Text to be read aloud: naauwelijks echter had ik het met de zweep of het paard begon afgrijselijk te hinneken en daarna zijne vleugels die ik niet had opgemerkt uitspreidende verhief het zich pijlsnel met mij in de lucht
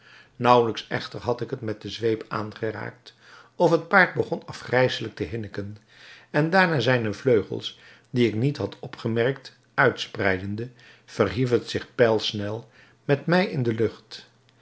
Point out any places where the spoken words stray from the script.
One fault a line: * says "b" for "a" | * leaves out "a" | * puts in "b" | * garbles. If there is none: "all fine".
* puts in "aangeraakt"